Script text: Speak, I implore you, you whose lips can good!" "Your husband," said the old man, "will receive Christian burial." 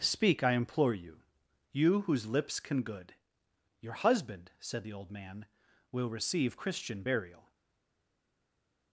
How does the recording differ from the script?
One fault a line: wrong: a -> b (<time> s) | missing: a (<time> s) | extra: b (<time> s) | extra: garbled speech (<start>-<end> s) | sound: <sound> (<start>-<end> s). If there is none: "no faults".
no faults